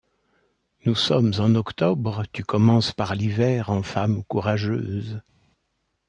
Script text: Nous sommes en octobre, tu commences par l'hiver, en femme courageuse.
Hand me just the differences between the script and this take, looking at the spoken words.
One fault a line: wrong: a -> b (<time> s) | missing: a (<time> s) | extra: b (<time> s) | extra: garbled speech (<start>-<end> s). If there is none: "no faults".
no faults